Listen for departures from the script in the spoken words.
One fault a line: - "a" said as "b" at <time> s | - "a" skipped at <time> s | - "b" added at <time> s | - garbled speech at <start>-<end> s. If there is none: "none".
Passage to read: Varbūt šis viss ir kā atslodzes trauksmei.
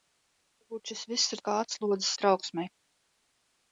none